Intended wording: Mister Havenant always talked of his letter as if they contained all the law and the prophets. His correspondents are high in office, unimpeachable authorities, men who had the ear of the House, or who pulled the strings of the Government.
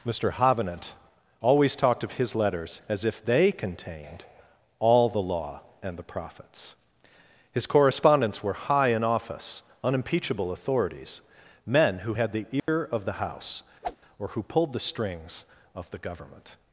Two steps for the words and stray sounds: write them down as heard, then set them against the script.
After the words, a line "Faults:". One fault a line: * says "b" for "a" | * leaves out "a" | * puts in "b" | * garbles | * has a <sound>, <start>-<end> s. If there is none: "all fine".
Mister Havenant always talked of his letters as if they contained all the law and the prophets. His correspondents were high in office, unimpeachable authorities, men who had the ear of the House, or who pulled the strings of the Government.
Faults:
* says "letters" for "letter"
* says "were" for "are"
* has a dropout, 12.6-12.7 s
* has a whoosh, 13.8-14.0 s